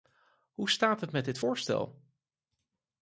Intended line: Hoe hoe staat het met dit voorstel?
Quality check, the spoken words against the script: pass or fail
fail